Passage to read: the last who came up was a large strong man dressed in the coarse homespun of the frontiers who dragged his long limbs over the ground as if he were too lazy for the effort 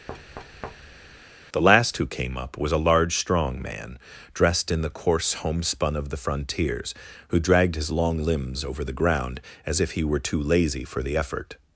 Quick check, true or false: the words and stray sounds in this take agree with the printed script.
false